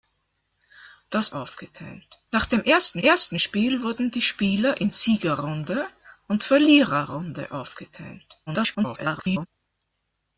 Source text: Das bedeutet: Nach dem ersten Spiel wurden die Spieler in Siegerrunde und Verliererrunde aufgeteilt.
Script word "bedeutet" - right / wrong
wrong